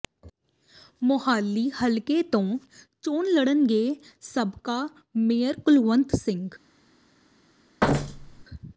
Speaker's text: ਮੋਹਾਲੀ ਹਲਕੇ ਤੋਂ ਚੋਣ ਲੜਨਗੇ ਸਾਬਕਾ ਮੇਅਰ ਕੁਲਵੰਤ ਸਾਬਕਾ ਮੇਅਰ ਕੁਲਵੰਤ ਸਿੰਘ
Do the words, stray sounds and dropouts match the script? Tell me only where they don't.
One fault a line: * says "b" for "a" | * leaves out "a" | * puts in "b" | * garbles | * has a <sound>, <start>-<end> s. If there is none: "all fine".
* leaves out "ਸਾਬਕਾ ਮੇਅਰ ਕੁਲਵੰਤ"
* has a thud, 7.8-8.5 s